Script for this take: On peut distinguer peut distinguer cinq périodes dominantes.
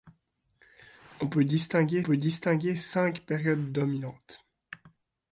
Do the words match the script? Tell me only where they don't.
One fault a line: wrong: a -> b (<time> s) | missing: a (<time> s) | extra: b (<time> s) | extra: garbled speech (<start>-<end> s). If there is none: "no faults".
no faults